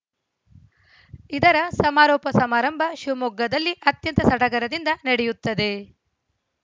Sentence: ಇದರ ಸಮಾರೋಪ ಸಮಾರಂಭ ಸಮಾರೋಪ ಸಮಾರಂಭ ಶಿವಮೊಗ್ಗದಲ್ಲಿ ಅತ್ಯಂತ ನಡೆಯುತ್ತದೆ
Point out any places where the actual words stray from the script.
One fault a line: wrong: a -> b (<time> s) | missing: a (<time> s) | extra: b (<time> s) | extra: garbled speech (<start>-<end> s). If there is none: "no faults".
missing: ಸಮಾರೋಪ ಸಮಾರಂಭ (2.8 s)
extra: ಸಡಗರದಿಂದ (4.3 s)